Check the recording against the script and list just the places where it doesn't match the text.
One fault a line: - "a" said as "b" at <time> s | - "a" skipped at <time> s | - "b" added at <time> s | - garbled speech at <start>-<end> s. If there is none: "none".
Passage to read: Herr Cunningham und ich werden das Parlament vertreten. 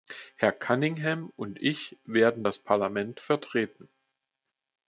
none